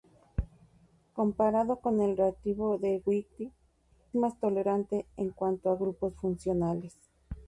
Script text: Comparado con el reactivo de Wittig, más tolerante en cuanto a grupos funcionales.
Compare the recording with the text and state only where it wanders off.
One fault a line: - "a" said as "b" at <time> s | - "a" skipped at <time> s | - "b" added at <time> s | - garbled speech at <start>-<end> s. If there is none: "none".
none